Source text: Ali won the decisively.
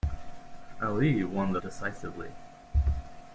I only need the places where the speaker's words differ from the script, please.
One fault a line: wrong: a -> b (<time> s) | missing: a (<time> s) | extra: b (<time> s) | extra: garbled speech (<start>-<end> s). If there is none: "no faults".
no faults